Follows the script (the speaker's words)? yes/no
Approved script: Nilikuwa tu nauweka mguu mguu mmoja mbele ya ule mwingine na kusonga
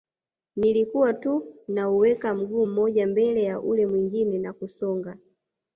no